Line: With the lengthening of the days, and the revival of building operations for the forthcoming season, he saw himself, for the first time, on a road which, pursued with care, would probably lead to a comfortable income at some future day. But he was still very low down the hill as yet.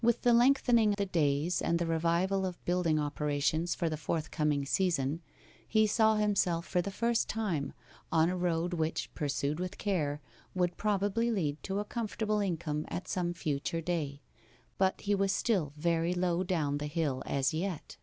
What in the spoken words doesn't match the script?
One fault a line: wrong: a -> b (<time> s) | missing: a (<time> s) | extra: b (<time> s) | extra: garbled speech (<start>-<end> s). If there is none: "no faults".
missing: of (0.9 s)